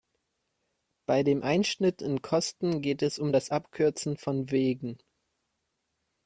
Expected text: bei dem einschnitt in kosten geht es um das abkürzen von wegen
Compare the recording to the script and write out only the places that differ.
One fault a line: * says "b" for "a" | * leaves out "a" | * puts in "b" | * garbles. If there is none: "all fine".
all fine